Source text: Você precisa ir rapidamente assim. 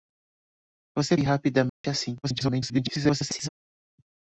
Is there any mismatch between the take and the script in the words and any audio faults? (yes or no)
yes